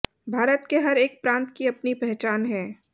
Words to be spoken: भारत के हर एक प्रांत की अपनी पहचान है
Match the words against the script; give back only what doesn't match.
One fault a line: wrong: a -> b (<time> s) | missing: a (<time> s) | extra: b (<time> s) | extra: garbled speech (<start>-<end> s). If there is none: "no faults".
no faults